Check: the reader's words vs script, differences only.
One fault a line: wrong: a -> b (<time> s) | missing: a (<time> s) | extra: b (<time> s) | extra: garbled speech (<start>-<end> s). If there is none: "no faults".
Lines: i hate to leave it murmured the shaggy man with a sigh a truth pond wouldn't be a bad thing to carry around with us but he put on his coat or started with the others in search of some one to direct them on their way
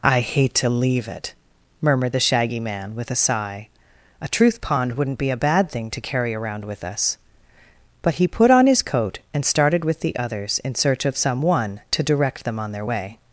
wrong: or -> and (9.3 s)